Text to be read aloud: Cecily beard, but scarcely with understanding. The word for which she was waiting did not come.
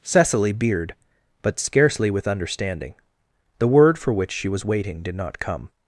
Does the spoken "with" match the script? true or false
true